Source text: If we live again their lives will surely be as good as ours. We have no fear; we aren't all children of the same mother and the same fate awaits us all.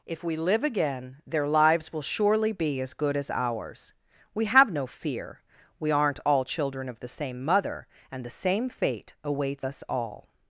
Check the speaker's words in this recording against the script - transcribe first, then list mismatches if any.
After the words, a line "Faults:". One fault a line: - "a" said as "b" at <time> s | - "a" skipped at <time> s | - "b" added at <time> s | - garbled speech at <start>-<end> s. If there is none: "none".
If we live again their lives will surely be as good as ours. We have no fear; we aren't all children of the same mother and the same fate awaits us all.
Faults:
none